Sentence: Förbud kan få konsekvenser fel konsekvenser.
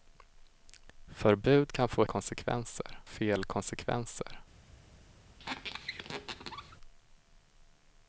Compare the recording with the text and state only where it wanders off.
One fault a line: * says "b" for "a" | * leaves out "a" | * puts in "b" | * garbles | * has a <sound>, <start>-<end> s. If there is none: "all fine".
* has a squeak, 5.4-6.8 s